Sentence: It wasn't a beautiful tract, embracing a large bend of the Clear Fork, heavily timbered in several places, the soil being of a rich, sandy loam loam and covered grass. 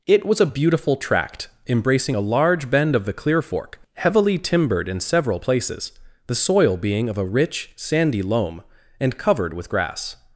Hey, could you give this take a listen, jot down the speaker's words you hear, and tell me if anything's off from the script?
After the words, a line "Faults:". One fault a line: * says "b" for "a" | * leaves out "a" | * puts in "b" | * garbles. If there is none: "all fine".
It was a beautiful tract, embracing a large bend of the Clear Fork, heavily timbered in several places, the soil being of a rich, sandy loam and covered with grass.
Faults:
* says "was" for "wasn't"
* leaves out "loam"
* puts in "with"